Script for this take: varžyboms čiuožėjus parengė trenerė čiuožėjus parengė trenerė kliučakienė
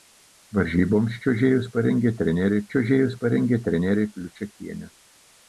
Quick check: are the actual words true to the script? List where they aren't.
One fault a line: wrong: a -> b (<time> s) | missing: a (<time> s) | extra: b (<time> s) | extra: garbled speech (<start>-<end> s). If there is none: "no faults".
no faults